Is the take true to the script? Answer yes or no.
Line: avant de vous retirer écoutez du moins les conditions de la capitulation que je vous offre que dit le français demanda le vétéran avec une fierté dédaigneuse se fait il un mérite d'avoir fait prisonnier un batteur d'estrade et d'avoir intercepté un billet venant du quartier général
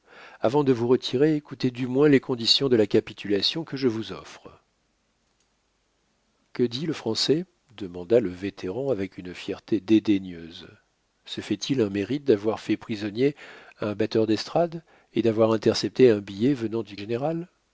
no